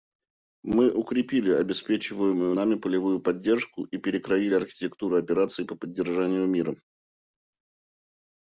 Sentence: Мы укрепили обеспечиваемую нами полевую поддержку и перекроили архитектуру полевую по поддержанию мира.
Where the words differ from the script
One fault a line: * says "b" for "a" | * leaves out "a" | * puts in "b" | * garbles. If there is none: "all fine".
* says "операций" for "полевую"